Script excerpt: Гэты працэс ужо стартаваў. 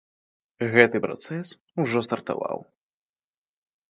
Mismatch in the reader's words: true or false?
false